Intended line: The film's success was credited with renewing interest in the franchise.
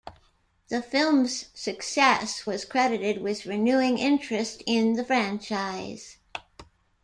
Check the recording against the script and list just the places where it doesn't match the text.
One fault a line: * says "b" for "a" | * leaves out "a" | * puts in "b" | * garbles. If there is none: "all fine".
all fine